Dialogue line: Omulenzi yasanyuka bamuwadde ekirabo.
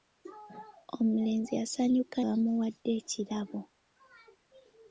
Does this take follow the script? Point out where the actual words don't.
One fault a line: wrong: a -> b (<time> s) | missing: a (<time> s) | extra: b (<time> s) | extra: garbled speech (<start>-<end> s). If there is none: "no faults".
no faults